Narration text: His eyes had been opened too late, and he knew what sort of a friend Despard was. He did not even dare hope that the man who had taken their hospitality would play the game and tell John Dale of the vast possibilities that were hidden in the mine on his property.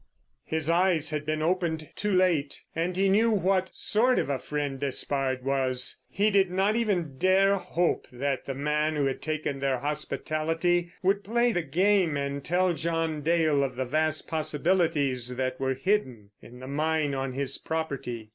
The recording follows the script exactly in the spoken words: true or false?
true